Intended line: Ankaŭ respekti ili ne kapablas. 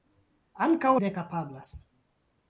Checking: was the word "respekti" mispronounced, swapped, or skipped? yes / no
yes